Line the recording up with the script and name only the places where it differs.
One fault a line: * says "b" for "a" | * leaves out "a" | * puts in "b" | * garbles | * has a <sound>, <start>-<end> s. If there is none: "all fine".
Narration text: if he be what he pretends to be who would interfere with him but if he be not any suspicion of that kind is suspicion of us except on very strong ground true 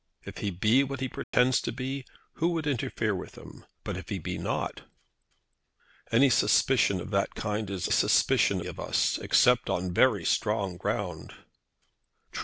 * has a dropout, 1.2-1.3 s